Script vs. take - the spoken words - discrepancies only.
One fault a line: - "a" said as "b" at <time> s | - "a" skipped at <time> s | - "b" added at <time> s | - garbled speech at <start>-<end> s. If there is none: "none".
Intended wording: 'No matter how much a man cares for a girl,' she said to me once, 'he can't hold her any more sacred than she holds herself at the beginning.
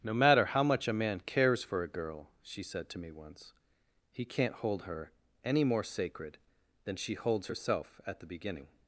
none